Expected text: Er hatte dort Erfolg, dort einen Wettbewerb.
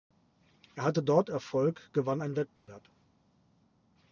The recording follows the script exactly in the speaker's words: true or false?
false